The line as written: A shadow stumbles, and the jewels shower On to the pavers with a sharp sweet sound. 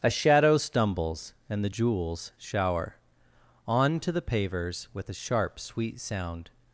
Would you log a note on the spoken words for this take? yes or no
no